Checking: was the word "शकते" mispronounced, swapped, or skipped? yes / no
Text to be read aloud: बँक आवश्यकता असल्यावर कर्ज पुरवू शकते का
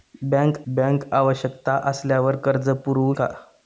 yes